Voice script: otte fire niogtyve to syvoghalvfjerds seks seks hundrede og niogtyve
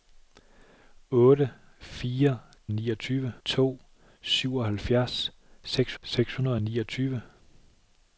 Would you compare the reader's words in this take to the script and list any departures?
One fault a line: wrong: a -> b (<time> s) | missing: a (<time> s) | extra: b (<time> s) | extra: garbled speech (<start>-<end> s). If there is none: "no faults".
no faults